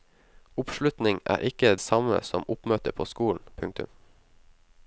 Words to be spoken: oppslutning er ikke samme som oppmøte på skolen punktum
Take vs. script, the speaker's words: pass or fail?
pass